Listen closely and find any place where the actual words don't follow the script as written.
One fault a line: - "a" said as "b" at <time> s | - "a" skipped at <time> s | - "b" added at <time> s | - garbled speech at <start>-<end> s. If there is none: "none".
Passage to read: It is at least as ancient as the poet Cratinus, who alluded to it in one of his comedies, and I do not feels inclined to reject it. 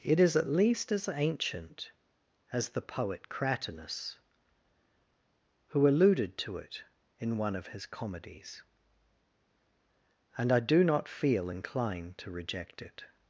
- "feels" said as "feel" at 11.1 s